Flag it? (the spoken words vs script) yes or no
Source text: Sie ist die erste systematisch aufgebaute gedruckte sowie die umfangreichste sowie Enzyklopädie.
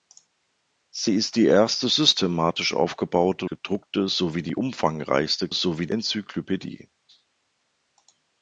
no